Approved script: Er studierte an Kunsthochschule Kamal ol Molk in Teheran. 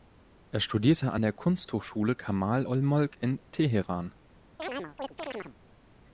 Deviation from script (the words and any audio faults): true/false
true